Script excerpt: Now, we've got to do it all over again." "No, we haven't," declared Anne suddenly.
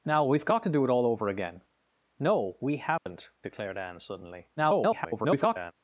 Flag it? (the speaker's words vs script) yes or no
yes